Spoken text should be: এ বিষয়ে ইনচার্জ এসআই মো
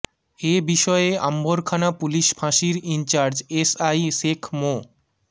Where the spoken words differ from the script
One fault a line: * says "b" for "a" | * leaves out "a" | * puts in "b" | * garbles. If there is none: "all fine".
* puts in "আম্বরখানা পুলিশ ফাঁসির"
* puts in "শেখ"